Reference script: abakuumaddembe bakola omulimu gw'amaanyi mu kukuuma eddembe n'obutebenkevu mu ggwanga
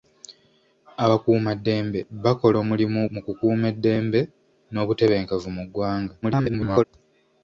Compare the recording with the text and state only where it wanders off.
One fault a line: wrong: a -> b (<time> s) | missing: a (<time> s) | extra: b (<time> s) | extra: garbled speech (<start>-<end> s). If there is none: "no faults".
missing: gw'amaanyi (3.0 s)
extra: garbled speech (6.2-6.8 s)